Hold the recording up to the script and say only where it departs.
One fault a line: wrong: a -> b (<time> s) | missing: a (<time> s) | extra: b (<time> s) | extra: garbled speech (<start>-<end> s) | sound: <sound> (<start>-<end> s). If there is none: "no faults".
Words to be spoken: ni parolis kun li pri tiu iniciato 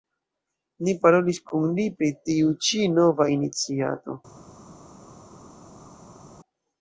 extra: ĉi nova (2.7 s)